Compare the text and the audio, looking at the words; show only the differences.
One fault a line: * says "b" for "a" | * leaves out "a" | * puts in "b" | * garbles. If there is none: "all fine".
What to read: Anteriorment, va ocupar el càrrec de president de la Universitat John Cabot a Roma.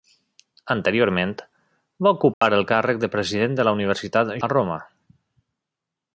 * leaves out "John Cabot"